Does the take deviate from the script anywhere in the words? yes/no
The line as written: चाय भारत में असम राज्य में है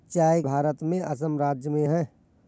no